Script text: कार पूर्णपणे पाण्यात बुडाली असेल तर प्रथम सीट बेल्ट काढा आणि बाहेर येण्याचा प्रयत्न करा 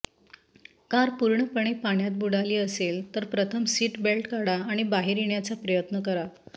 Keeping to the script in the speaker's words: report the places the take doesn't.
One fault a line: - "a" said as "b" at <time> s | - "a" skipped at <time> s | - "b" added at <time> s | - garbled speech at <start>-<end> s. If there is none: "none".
none